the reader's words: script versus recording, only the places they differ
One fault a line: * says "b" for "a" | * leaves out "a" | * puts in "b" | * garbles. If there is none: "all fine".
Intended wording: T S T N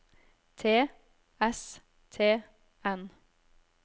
all fine